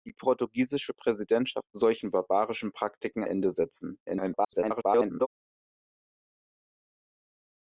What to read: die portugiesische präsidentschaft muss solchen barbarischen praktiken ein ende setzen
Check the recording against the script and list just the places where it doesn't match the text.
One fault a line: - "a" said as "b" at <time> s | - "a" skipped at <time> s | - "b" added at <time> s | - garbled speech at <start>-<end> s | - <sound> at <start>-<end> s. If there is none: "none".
- "muss" skipped at 1.7 s
- "ein" skipped at 3.2 s
- garbled speech at 4.1-5.3 s